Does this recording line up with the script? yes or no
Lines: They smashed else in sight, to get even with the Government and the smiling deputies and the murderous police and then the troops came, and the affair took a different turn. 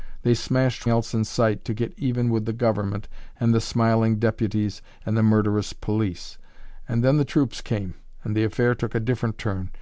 yes